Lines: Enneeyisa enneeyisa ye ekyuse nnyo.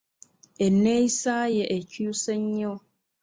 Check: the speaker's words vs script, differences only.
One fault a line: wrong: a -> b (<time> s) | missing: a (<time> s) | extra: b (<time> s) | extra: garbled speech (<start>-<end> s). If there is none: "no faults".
missing: enneeyisa (1.4 s)